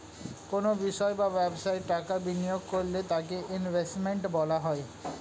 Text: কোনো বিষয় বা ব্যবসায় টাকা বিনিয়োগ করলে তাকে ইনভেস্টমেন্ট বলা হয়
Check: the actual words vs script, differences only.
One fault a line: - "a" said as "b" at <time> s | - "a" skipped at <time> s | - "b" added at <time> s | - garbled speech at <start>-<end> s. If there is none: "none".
none